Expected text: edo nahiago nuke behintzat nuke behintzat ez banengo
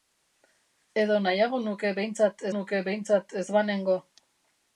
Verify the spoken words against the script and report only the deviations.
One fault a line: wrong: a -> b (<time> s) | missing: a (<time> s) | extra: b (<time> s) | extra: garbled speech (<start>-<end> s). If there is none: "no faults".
no faults